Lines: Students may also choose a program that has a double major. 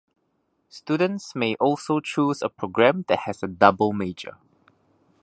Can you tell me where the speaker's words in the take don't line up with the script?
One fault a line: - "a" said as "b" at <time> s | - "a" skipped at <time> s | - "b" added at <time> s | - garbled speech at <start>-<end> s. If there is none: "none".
none